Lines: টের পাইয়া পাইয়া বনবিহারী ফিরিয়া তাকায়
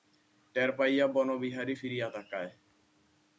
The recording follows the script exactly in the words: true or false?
false